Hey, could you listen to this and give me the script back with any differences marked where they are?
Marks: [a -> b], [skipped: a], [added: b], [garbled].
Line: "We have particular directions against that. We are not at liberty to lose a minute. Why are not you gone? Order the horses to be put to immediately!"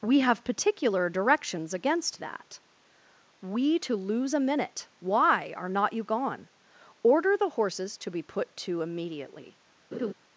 "We have particular directions against that. We [skipped: are not at liberty] to lose a minute. Why are not you gone? Order the horses to be put to immediately!"